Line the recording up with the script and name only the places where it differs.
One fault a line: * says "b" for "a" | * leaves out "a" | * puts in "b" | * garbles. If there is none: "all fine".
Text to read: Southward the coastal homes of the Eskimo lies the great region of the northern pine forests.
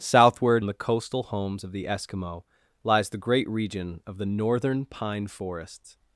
all fine